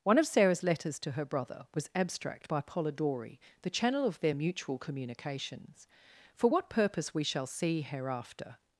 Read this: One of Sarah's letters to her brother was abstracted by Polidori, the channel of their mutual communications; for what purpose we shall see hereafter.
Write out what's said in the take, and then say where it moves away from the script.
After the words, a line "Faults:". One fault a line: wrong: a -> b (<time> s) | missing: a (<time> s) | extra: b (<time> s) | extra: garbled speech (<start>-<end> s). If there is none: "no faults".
One of Sarah's letters to her brother was abstract by Polidori, the channel of their mutual communications; for what purpose we shall see hereafter.
Faults:
wrong: abstracted -> abstract (1.9 s)